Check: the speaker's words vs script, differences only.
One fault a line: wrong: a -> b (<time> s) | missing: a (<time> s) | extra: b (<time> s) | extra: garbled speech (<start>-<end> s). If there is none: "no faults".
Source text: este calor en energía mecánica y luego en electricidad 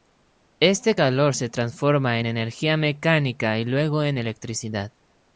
extra: se transforma (1.3 s)